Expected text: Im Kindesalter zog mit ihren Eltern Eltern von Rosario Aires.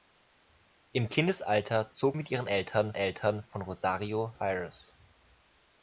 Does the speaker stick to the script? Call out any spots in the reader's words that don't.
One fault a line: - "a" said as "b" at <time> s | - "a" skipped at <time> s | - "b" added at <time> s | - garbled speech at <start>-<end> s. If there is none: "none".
none